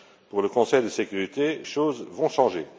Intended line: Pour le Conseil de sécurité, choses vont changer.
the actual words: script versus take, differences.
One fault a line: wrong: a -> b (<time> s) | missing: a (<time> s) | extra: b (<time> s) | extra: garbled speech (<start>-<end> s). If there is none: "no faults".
no faults